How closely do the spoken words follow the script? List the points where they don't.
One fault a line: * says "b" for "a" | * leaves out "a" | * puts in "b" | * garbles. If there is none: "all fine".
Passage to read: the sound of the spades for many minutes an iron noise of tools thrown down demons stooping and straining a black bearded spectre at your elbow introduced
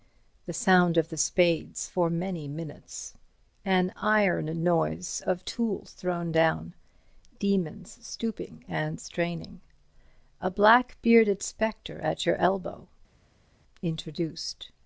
all fine